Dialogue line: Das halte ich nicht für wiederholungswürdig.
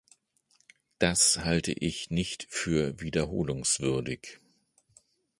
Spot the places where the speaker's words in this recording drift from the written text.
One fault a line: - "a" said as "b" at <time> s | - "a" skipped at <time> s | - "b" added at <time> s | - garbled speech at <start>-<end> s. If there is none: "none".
none